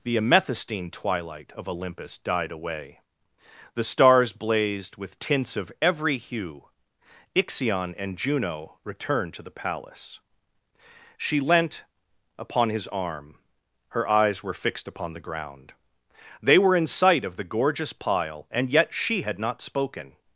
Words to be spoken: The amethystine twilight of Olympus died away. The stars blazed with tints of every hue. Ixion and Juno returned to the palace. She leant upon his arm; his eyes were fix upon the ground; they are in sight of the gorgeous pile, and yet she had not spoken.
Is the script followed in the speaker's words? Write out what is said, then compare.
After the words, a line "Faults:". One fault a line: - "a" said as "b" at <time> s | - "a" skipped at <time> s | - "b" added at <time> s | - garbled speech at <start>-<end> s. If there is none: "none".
The amethystine twilight of Olympus died away. The stars blazed with tints of every hue. Ixion and Juno returned to the palace. She leant upon his arm; her eyes were fixed upon the ground; they were in sight of the gorgeous pile, and yet she had not spoken.
Faults:
- "his" said as "her" at 13.9 s
- "fix" said as "fixed" at 14.6 s
- "are" said as "were" at 16.6 s